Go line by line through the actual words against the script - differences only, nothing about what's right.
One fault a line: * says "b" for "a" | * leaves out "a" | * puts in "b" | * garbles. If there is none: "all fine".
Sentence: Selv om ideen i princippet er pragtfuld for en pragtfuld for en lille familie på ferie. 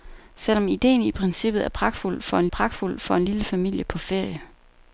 all fine